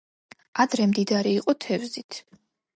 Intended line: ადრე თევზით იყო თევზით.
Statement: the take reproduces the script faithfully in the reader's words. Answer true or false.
false